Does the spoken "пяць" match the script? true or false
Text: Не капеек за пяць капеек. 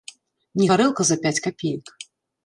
true